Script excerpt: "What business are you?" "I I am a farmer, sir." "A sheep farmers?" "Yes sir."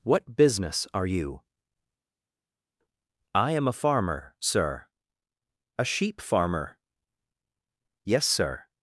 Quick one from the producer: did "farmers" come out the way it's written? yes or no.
no